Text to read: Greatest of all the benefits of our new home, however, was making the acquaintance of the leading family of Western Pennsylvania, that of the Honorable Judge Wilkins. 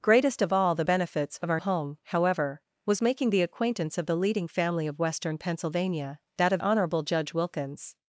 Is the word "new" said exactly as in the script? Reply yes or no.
no